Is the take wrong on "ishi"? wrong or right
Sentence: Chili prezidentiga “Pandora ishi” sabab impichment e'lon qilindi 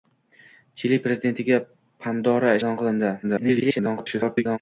wrong